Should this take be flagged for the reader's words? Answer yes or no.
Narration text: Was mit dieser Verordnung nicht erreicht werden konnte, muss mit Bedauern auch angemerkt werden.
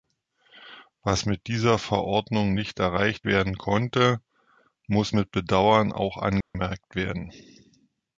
no